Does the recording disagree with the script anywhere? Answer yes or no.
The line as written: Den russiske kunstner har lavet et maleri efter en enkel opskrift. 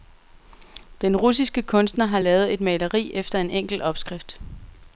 no